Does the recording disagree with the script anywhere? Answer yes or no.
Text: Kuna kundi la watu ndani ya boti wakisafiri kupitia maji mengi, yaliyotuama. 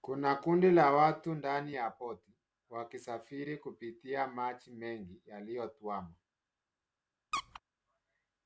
no